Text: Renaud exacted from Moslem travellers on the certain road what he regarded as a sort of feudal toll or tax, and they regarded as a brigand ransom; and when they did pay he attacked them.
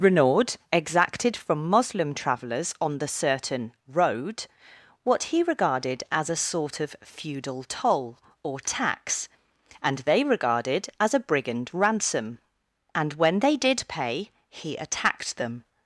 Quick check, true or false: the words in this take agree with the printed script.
true